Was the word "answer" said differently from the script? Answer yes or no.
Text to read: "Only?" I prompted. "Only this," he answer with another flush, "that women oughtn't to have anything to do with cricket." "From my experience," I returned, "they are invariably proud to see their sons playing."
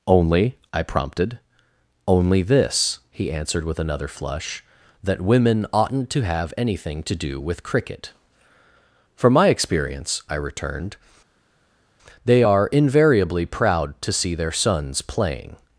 yes